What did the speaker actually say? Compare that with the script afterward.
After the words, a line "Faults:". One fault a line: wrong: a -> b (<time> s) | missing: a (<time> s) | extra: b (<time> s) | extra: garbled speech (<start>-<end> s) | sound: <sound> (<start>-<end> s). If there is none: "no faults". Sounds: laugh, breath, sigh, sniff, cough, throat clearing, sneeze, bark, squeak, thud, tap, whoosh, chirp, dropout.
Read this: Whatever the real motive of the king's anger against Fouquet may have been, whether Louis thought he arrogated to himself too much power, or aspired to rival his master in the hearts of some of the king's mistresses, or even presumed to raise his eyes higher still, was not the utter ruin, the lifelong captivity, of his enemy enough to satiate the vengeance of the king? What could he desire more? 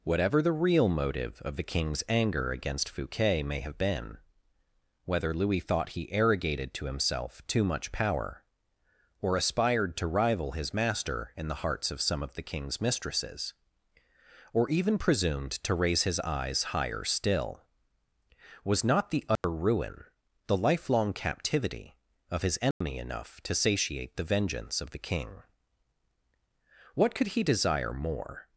Whatever the real motive of the king's anger against Fouquet may have been, whether Louis thought he arrogated to himself too much power, or aspired to rival his master in the hearts of some of the king's mistresses, or even presumed to raise his eyes higher still, was not the utter ruin, the lifelong captivity, of his enemy enough to satiate the vengeance of the king? What could he desire more?
Faults:
sound: dropout (19.4-19.4 s)
sound: dropout (22.7-22.8 s)